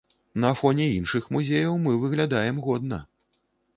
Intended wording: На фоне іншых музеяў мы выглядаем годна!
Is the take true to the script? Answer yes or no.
yes